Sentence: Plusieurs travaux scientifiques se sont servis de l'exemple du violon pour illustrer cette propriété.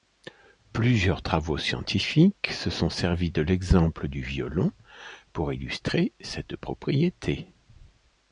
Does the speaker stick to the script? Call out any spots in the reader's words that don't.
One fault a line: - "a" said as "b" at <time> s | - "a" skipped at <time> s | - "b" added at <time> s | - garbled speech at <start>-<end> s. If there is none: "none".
none